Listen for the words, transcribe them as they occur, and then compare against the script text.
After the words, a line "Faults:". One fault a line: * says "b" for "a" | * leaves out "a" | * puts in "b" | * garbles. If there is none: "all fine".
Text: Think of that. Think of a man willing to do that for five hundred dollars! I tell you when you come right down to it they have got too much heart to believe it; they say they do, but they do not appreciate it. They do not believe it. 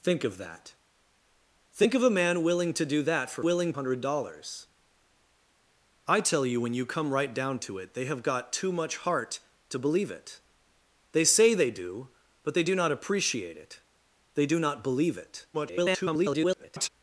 Think of that. Think of a man willing to do that for willing hundred dollars! I tell you when you come right down to it they have got too much heart to believe it; they say they do, but they do not appreciate it. They do not believe it. [garbled]
Faults:
* says "willing" for "five"
* garbles